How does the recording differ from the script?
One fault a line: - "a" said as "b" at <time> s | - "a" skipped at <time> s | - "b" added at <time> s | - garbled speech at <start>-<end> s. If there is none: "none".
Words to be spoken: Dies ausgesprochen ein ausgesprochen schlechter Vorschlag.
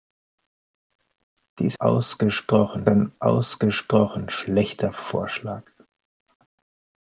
none